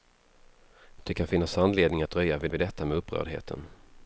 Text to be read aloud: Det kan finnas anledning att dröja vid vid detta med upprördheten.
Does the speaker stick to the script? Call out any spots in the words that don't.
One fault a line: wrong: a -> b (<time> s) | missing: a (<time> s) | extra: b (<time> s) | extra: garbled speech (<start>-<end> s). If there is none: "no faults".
no faults